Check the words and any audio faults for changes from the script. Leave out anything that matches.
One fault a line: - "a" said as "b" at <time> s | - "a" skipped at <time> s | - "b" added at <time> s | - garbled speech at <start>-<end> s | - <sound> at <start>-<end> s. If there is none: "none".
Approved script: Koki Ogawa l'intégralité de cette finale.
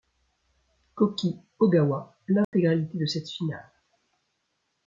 - dropout at 2.4-2.5 s